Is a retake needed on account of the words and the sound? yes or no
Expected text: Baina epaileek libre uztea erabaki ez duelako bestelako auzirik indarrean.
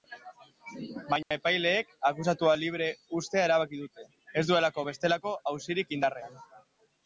yes